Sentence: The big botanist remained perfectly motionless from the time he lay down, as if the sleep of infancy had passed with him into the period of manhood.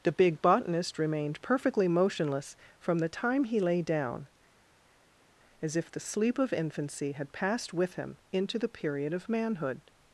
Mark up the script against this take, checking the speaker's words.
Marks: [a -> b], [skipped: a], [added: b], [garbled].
The big botanist remained perfectly motionless from the time he lay down, as if the sleep of infancy had passed with him into the period of manhood.